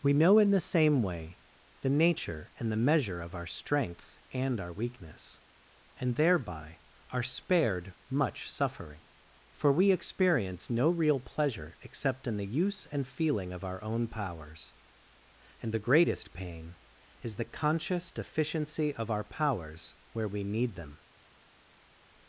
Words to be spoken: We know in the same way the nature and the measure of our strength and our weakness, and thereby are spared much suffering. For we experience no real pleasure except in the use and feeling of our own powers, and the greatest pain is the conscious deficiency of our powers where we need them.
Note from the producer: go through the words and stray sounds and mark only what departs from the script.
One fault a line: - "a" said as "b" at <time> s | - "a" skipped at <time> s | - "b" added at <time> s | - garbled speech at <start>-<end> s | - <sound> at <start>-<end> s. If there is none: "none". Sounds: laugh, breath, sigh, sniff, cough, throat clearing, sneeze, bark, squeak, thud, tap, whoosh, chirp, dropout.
none